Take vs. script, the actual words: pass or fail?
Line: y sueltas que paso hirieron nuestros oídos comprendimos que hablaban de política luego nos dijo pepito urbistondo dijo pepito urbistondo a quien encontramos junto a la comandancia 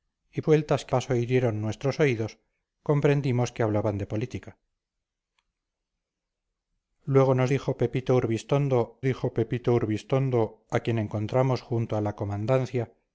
pass